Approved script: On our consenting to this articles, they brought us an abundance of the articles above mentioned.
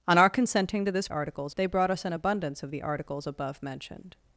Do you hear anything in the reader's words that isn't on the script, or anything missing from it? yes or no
no